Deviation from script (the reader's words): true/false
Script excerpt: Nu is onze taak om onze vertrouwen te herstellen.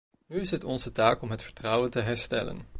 true